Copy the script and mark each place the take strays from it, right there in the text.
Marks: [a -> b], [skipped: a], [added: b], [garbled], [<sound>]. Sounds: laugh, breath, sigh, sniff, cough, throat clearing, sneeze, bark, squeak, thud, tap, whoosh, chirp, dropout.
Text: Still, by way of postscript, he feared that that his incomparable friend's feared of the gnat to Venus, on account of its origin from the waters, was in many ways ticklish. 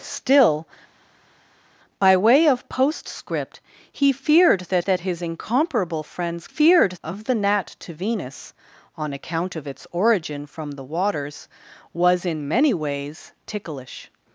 Still, by way of postscript, he feared that that his incomparable friend's feared of the gnat to Venus, on account of its origin from the waters, was in many ways ticklish.